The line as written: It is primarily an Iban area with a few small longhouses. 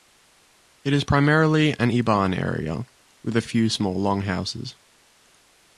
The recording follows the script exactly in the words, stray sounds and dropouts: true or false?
true